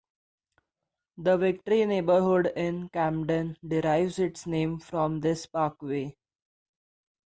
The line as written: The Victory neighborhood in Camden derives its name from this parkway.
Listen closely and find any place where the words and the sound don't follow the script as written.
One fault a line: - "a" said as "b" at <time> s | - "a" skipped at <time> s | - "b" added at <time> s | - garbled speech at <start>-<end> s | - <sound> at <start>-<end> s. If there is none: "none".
none